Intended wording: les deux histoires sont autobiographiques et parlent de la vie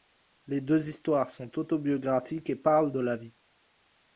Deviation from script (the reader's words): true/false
false